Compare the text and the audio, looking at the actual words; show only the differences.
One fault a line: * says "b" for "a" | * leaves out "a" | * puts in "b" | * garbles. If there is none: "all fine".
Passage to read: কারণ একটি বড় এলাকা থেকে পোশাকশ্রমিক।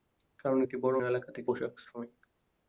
all fine